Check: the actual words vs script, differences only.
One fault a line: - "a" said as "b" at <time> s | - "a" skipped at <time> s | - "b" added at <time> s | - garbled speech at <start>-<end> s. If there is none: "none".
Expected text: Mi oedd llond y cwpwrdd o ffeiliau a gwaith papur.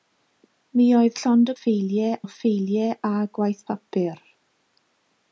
- "cwpwrdd" said as "ffeiliau" at 1.6 s